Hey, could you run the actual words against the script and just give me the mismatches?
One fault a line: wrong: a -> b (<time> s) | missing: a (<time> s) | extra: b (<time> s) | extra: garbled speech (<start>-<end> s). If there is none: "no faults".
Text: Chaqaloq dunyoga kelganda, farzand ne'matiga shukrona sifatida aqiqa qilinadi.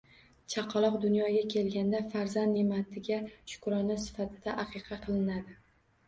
no faults